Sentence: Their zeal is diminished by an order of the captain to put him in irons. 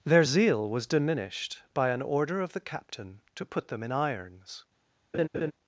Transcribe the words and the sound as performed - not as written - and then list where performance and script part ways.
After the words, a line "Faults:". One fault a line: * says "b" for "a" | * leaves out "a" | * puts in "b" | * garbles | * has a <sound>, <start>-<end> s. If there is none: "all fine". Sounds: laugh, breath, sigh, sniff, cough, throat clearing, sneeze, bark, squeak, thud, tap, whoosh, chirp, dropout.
Their zeal was diminished by an order of the captain to put them in irons.
Faults:
* says "was" for "is"
* says "them" for "him"
* has a laugh, 5.1-5.5 s